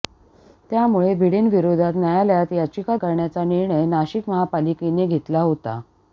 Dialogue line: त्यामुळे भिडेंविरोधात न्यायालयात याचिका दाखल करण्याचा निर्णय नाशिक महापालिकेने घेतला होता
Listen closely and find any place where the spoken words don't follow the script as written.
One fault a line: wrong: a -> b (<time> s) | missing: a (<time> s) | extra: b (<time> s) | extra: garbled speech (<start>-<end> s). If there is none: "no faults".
missing: दाखल (3.0 s)